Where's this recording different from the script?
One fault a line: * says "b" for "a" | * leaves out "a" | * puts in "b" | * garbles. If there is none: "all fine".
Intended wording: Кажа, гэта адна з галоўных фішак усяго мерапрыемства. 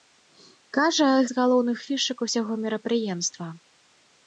* leaves out "гэта адна"